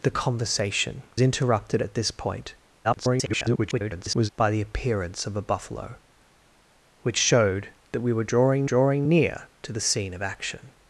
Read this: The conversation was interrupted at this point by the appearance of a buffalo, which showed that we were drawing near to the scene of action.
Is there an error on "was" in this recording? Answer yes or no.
yes